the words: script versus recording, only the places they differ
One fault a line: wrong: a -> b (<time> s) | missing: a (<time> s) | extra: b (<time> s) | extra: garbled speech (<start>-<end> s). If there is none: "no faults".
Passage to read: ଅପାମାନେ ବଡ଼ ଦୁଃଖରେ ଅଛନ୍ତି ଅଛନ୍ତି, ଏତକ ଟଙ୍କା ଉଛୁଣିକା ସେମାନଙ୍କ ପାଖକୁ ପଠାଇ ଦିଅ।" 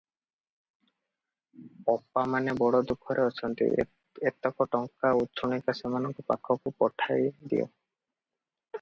missing: ଅଛନ୍ତି (3.7 s)